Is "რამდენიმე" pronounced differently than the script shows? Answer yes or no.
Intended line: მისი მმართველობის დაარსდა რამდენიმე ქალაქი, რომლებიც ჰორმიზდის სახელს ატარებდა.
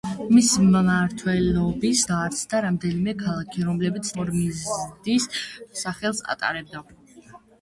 no